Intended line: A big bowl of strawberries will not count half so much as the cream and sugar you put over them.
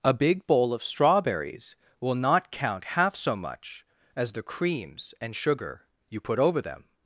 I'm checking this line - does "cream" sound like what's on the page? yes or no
no